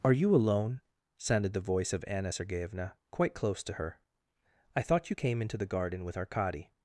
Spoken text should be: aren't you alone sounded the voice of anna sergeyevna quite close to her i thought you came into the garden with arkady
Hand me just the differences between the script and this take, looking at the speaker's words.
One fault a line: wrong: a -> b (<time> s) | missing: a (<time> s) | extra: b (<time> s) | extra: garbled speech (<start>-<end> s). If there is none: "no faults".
wrong: aren't -> are (0.0 s)